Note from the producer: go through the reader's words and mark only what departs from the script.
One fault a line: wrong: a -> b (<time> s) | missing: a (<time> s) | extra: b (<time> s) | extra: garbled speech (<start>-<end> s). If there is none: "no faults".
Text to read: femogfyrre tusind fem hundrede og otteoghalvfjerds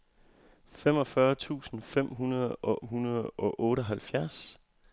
extra: hundrede og (2.8 s)